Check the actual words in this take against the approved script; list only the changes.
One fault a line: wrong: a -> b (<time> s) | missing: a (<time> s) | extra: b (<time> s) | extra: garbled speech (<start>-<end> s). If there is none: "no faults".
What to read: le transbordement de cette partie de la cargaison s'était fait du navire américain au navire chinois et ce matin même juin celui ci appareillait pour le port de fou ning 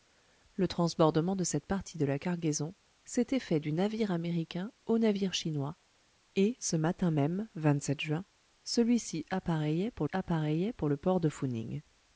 extra: appareillait pour (10.1 s)